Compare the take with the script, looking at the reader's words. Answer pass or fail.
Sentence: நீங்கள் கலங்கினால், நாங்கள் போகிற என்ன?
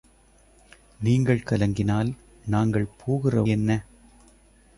pass